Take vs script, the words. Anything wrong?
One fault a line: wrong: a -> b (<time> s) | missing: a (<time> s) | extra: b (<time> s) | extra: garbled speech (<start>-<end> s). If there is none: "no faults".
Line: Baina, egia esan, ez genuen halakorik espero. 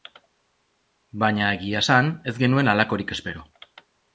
no faults